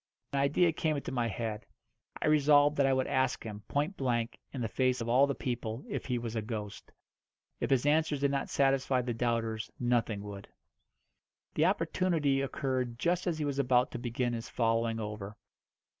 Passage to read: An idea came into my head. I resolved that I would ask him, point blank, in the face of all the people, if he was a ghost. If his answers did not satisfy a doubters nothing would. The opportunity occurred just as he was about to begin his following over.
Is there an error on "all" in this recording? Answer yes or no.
no